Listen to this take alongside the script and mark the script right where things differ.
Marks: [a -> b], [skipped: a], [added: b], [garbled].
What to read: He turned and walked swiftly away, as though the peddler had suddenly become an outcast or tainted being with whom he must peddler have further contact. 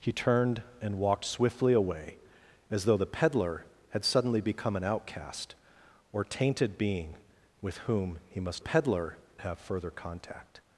He turned and walked swiftly away, as though the peddler had suddenly become an outcast or tainted being with whom he must peddler have further contact.